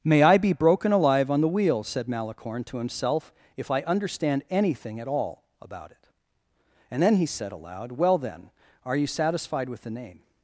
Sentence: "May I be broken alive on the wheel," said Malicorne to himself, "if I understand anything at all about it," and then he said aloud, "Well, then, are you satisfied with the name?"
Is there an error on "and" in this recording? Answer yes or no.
no